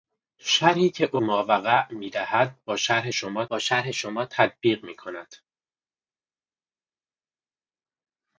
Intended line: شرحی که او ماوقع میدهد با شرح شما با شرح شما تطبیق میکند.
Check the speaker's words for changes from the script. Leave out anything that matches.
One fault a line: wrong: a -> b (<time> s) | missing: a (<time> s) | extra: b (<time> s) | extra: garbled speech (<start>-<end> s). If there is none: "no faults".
no faults